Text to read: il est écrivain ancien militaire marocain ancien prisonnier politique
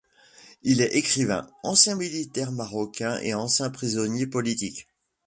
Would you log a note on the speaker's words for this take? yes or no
yes